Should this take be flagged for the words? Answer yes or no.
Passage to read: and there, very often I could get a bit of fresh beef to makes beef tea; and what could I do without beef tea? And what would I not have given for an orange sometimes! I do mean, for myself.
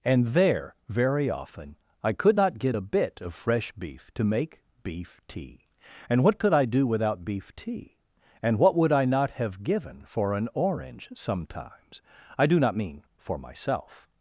yes